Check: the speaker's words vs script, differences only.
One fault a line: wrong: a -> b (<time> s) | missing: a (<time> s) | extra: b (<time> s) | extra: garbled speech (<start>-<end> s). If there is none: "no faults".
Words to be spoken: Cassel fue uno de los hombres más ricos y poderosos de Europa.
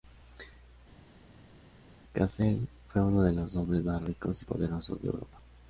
no faults